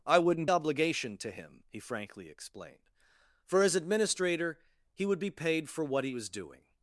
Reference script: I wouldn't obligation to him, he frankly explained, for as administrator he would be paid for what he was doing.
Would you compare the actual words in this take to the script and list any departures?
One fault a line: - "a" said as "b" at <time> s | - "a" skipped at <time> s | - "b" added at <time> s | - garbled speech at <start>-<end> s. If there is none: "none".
none